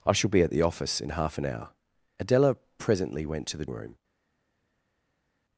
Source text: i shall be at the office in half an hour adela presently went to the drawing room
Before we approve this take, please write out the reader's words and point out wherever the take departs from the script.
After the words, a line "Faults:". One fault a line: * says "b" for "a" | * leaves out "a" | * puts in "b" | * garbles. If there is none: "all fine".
i shall be at the office in half an hour adela presently went to the room
Faults:
* leaves out "drawing"